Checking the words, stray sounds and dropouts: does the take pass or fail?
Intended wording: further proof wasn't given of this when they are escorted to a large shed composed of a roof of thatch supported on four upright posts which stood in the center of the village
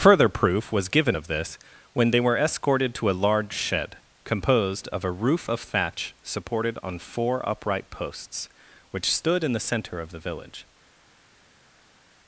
fail